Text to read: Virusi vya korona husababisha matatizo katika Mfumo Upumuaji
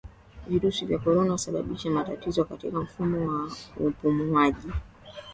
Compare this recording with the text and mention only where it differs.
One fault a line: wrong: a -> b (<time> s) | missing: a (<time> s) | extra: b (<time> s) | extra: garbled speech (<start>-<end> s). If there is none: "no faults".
extra: wa (3.3 s)